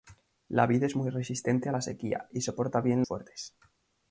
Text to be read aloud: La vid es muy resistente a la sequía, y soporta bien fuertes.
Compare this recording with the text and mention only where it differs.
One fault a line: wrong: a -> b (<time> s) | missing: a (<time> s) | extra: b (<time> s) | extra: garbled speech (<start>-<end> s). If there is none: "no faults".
no faults